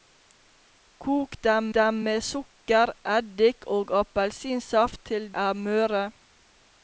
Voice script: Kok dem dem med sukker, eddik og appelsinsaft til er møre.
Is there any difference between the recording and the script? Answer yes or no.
no